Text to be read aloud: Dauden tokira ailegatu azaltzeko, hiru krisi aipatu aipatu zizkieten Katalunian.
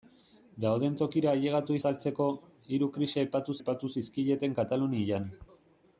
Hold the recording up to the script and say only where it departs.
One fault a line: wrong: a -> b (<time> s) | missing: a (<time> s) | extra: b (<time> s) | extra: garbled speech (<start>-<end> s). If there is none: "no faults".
no faults